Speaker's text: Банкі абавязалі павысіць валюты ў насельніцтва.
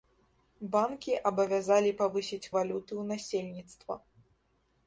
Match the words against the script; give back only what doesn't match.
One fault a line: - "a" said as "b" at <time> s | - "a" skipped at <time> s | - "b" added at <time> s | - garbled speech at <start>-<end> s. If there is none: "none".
none